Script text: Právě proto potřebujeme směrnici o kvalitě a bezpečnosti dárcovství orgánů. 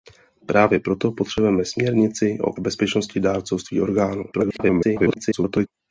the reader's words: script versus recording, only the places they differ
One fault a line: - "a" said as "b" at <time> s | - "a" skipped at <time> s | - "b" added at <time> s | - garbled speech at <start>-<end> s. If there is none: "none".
- "kvalitě" skipped at 2.5 s
- garbled speech at 4.3-5.7 s